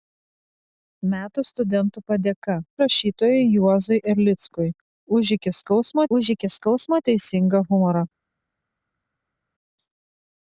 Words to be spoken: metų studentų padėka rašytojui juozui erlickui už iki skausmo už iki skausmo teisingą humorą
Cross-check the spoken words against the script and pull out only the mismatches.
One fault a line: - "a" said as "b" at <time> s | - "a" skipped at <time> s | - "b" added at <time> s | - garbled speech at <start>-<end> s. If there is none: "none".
none